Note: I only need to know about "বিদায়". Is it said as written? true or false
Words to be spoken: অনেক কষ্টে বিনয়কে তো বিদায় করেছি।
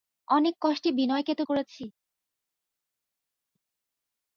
false